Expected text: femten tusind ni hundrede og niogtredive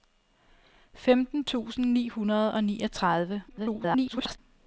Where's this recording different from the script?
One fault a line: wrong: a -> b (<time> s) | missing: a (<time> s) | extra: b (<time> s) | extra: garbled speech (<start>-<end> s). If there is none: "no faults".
extra: garbled speech (3.5-4.4 s)